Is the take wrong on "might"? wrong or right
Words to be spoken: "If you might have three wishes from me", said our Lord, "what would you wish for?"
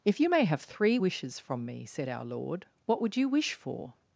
wrong